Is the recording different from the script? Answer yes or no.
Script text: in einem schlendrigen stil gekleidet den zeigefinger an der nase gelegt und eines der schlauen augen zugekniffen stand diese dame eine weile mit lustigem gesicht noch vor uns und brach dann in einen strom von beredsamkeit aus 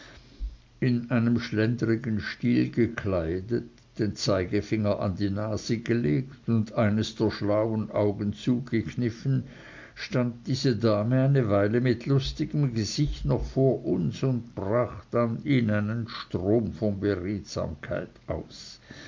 yes